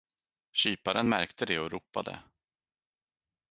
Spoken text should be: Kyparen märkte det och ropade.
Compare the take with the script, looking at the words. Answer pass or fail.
pass